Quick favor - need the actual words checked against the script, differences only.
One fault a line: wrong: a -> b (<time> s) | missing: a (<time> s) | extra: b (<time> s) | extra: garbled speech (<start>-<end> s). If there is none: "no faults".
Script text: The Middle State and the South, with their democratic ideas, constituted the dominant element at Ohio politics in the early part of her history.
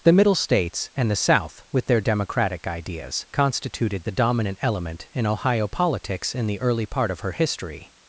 wrong: State -> States (0.3 s)
wrong: at -> in (5.1 s)